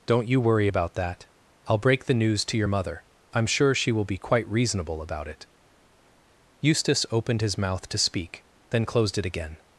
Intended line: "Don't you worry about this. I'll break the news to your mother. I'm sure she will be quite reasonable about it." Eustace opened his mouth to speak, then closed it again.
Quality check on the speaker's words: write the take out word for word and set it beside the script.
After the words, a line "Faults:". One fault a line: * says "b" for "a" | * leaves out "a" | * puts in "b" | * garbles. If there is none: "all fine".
"Don't you worry about that. I'll break the news to your mother. I'm sure she will be quite reasonable about it." Eustace opened his mouth to speak, then closed it again.
Faults:
* says "that" for "this"